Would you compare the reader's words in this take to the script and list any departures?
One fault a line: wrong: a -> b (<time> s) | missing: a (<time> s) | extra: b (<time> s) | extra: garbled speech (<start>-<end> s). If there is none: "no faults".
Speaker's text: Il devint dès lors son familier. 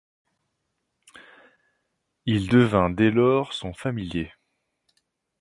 no faults